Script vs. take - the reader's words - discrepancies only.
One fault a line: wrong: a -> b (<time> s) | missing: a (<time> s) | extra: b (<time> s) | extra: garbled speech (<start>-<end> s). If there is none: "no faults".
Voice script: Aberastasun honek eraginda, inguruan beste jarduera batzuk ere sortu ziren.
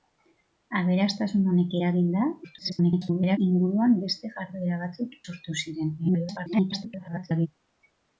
extra: garbled speech (2.4-3.4 s)
missing: ere (5.2 s)
extra: garbled speech (6.0-7.5 s)